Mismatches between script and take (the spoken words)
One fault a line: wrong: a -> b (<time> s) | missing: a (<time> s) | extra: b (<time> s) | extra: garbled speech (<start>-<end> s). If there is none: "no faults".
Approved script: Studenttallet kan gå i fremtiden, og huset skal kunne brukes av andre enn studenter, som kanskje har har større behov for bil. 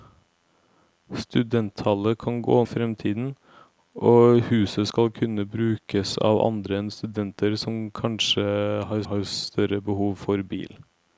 no faults